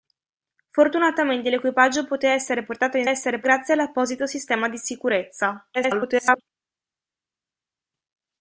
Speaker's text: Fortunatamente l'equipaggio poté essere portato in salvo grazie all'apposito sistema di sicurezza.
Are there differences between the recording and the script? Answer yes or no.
yes